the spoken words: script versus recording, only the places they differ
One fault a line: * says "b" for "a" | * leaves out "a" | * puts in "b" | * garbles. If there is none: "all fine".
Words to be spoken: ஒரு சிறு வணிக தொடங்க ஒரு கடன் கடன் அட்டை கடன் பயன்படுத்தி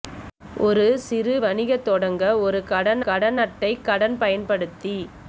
all fine